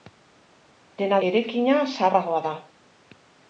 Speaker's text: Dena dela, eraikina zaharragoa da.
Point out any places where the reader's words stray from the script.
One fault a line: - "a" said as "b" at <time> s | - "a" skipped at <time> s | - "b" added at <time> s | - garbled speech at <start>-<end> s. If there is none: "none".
- "dela" skipped at 1.2 s